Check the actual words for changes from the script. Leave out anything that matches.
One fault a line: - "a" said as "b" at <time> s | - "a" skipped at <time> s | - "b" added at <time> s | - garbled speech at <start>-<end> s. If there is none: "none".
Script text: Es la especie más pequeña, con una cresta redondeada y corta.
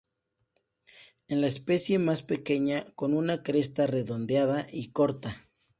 none